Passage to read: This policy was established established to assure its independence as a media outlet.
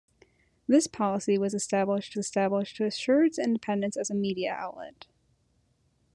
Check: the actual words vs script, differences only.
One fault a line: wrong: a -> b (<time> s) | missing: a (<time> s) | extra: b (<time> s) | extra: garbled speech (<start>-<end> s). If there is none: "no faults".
no faults